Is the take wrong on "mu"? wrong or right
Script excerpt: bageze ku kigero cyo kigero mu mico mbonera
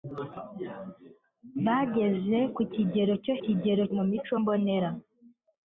right